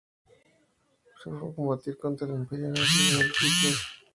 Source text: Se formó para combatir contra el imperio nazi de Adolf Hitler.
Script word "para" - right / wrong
wrong